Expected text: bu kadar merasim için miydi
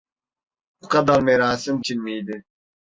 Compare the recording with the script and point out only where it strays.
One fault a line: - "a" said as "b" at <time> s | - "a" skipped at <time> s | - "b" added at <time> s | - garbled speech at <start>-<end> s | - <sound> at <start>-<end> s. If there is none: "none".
none